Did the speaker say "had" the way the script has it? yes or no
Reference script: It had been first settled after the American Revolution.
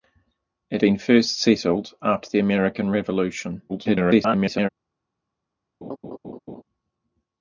no